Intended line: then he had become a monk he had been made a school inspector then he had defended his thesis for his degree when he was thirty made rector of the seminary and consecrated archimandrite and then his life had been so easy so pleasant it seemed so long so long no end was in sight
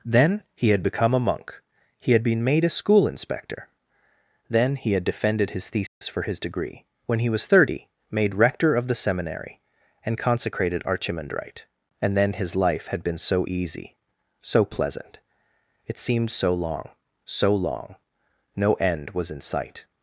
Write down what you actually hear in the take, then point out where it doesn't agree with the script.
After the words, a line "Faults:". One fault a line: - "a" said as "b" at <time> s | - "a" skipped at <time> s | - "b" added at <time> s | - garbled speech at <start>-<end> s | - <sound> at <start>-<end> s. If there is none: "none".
then he had become a monk he had been made a school inspector then he had defended his thesis for his degree when he was thirty made rector of the seminary and consecrated archimandrite and then his life had been so easy so pleasant it seemed so long so long no end was in sight
Faults:
- dropout at 5.9-6.0 s